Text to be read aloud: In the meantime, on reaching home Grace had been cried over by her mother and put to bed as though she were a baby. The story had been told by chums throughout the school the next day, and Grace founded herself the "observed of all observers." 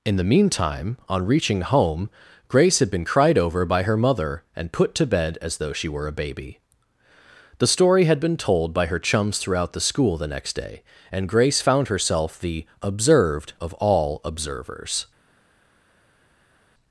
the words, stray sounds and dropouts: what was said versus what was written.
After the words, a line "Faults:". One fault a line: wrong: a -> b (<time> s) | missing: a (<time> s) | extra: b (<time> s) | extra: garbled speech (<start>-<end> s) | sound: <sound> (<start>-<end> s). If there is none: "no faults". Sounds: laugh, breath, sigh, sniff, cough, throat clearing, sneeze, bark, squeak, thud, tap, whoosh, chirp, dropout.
In the meantime, on reaching home Grace had been cried over by her mother and put to bed as though she were a baby. The story had been told by her chums throughout the school the next day, and Grace found herself the "observed of all observers."
Faults:
extra: her (8.9 s)
wrong: founded -> found (11.6 s)